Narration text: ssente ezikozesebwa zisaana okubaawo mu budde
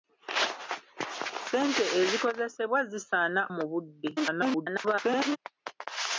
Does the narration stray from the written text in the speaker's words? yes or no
yes